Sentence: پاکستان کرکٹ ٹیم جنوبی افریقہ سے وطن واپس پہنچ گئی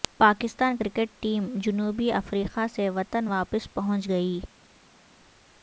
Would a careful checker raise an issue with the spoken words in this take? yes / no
no